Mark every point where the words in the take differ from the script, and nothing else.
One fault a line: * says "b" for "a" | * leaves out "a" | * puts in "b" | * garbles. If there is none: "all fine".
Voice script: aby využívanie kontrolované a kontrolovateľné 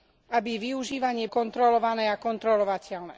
all fine